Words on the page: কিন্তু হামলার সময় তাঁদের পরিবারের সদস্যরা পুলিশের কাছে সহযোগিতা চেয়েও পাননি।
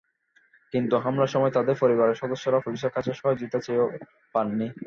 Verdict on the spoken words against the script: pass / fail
pass